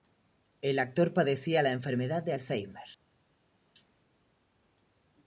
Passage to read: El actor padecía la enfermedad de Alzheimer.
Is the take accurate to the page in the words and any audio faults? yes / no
yes